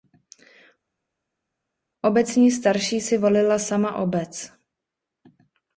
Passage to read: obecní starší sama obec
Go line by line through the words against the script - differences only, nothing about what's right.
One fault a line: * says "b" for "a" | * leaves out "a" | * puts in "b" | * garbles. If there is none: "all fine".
* puts in "si volila"